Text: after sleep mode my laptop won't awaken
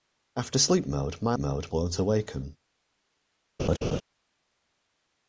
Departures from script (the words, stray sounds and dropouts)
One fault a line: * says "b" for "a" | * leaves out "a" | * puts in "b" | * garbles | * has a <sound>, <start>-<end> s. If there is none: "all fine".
* says "mode" for "laptop"
* has a laugh, 3.6-4.0 s